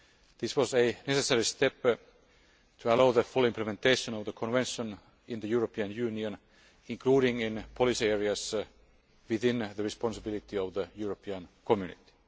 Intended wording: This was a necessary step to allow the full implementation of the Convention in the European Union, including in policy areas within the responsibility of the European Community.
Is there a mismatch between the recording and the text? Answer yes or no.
no